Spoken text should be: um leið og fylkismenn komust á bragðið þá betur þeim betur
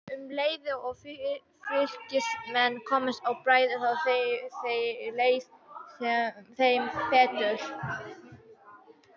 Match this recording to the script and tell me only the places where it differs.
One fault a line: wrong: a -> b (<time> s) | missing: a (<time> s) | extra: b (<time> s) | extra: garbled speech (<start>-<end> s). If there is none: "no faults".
wrong: betur -> leið (5.2 s)